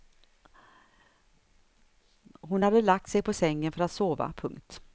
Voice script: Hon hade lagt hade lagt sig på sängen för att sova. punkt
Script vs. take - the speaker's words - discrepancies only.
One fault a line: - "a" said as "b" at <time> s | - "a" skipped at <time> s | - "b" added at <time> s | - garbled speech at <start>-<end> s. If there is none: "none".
- "hade lagt" skipped at 3.1 s